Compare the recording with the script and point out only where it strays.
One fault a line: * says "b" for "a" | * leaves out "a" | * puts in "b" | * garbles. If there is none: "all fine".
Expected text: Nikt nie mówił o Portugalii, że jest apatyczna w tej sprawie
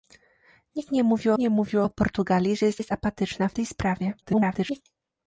* puts in "nie mówił"
* puts in "jest"
* garbles